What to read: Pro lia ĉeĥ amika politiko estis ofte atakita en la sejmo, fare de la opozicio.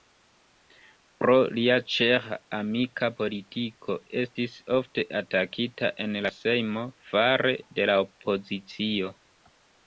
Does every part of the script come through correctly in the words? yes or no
yes